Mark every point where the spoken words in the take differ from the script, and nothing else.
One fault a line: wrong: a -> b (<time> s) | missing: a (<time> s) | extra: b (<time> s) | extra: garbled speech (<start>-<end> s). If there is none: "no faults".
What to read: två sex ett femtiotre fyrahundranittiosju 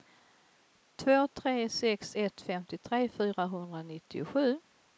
extra: tre (1.3 s)